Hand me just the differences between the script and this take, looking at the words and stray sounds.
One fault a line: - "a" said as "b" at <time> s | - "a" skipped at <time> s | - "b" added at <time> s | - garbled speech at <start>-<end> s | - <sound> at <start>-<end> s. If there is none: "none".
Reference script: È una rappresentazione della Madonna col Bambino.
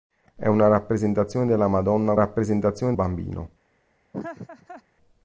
- "col" said as "rappresentazione" at 2.1 s
- laugh at 4.1-4.8 s